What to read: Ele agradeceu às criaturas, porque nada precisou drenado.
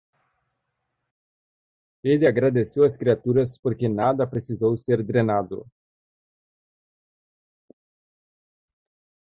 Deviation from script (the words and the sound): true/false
true